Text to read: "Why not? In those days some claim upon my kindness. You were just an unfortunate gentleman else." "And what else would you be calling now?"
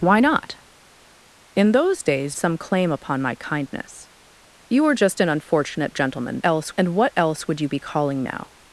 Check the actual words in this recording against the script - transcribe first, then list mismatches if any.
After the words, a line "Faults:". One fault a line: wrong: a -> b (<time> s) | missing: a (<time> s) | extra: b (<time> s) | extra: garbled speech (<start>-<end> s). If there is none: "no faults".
"Why not? In those days some claim upon my kindness. You were just an unfortunate gentleman else." "And what else would you be calling now?"
Faults:
no faults